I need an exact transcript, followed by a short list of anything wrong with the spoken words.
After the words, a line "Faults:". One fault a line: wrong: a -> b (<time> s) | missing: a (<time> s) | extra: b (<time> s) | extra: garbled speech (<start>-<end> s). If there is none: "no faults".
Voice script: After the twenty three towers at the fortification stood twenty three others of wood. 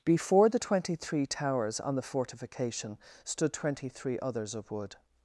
Before the twenty three towers on the fortification stood twenty three others of wood.
Faults:
wrong: After -> Before (0.0 s)
wrong: at -> on (1.8 s)